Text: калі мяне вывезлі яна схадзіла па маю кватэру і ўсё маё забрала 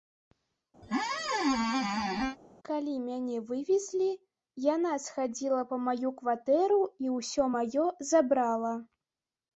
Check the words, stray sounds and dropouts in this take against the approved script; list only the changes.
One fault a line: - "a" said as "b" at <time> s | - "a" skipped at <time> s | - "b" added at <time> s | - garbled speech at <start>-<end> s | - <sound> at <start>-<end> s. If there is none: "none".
- squeak at 0.8-2.4 s